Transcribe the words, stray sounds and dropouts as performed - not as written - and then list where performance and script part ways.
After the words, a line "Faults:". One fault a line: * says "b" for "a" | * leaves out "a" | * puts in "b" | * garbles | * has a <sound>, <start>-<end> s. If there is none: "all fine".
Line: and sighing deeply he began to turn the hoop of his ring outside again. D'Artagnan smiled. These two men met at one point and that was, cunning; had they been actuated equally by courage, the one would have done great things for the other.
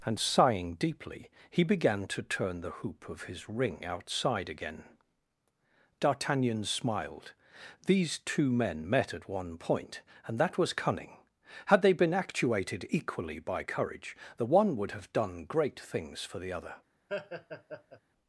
and sighing deeply he began to turn the hoop of his ring outside again. D'Artagnan smiled. These two men met at one point and that was, cunning; had they been actuated equally by courage, the one would have done great things for the other.
Faults:
* has a laugh, 17.1-18.0 s